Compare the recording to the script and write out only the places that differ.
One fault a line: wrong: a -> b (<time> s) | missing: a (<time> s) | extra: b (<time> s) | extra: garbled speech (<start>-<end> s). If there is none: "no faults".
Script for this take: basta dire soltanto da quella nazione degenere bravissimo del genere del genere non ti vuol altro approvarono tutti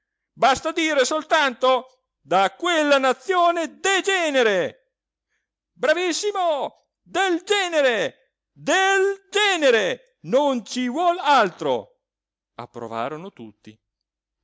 wrong: ti -> ci (10.7 s)